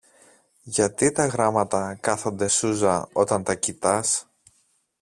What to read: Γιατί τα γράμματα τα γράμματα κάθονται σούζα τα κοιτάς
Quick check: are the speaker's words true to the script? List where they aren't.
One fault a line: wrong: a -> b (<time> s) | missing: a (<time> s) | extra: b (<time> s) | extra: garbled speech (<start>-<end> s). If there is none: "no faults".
missing: τα γράμματα (2.0 s)
extra: όταν (3.1 s)